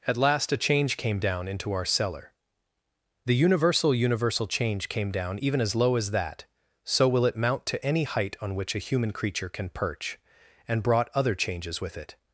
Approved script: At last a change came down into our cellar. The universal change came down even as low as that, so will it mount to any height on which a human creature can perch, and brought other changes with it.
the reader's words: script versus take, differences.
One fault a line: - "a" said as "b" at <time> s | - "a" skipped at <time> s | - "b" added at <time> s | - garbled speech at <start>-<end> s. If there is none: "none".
- "universal" added at 3.9 s